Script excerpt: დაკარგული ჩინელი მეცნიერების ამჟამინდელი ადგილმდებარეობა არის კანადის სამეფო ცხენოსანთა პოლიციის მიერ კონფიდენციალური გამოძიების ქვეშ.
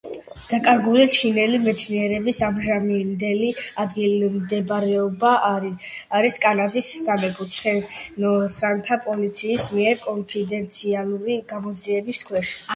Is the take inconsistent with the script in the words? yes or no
no